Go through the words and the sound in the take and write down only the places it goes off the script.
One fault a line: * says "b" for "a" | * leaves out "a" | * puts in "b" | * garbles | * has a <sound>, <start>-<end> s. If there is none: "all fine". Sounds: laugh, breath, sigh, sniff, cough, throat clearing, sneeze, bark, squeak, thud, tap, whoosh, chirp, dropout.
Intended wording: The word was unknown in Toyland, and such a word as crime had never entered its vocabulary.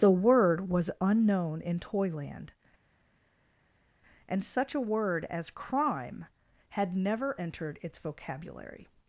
all fine